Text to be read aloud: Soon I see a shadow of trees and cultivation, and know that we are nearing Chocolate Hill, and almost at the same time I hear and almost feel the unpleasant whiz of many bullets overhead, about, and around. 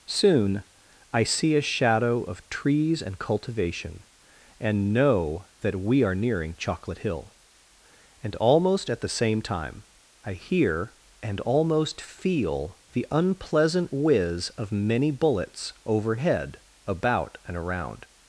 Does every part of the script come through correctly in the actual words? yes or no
yes